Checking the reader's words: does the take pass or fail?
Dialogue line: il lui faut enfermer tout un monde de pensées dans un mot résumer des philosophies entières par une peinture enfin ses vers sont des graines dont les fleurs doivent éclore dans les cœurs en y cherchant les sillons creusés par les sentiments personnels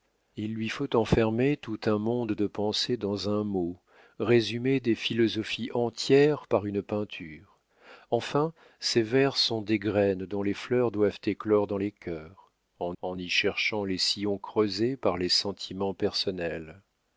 fail